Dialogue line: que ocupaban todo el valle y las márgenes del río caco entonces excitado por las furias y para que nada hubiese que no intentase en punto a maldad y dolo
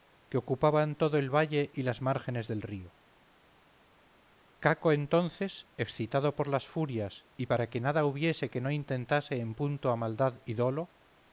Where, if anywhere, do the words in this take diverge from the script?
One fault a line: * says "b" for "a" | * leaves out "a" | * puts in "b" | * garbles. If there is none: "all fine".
all fine